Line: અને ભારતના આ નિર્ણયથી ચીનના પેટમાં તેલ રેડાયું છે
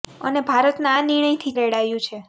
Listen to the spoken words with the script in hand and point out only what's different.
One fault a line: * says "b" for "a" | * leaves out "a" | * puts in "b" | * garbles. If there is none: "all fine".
* leaves out "ચીનના પેટમાં તેલ"